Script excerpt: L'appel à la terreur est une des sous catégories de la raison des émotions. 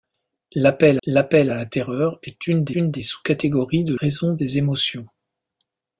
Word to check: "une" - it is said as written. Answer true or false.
true